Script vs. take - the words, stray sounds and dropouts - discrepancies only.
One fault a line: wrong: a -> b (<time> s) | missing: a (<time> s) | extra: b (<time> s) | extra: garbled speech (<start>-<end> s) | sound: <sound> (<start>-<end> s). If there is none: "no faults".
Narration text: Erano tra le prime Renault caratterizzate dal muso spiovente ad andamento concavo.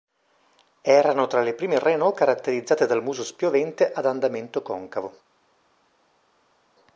no faults